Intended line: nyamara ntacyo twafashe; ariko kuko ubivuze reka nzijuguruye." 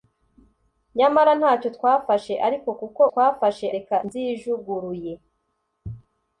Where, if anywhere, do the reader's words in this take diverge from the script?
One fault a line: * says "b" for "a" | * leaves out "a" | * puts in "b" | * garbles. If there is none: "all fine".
* says "twafashe" for "ubivuze"